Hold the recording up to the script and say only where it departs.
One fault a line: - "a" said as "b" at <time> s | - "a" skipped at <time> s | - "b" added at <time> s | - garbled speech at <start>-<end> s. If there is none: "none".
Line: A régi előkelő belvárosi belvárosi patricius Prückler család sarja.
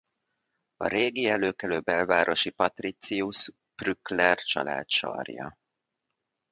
- "belvárosi" skipped at 2.5 s